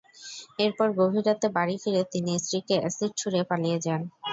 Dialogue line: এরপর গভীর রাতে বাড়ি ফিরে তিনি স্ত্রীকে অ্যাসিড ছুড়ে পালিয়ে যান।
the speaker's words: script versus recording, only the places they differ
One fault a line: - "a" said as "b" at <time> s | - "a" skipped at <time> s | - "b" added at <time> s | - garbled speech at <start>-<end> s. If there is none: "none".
none